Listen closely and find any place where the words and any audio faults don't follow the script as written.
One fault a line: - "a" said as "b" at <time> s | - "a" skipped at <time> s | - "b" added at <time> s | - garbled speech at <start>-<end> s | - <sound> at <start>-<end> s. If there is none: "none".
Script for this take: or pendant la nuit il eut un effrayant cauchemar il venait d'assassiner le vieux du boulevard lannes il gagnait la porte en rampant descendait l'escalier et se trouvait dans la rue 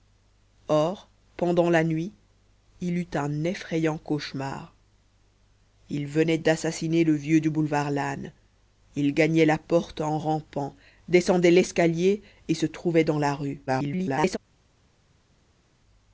- garbled speech at 13.7-14.4 s